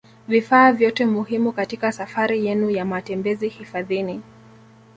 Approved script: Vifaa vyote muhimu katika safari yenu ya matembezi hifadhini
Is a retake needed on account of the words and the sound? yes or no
no